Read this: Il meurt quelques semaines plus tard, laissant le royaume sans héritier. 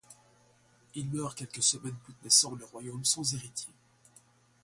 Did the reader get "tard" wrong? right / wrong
wrong